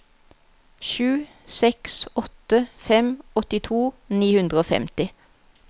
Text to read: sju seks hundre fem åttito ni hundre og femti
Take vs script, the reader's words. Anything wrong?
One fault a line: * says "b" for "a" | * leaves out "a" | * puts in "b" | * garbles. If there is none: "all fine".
* says "åtte" for "hundre"